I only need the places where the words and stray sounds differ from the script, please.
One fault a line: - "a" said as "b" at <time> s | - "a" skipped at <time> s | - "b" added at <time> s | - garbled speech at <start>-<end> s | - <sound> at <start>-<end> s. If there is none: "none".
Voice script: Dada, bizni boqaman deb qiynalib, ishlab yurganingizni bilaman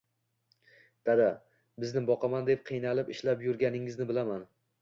none